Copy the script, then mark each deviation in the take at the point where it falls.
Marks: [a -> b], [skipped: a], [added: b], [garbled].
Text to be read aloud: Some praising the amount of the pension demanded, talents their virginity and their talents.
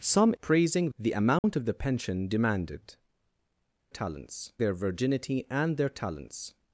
Some praising the amount of the pension demanded, talents their virginity and their talents.